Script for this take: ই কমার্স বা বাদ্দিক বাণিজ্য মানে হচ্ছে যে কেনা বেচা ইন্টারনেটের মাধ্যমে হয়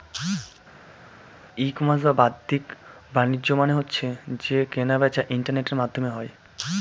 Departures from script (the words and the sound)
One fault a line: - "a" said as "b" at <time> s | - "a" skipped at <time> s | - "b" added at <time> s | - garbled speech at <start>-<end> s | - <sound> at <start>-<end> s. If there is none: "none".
none